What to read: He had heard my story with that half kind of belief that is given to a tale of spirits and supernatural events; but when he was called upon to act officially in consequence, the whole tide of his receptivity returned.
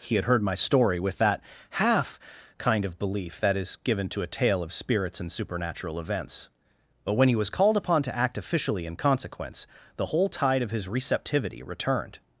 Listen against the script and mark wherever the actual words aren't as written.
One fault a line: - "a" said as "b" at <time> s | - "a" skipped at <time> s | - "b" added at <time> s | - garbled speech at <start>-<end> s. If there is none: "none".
none